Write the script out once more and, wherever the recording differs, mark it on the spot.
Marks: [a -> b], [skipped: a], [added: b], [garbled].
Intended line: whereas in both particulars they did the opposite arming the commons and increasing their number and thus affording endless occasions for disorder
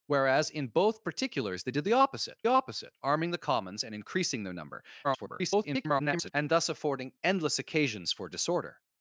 whereas in both particulars they did the opposite [added: opposite] arming the commons and increasing their number [garbled] and thus affording endless occasions for disorder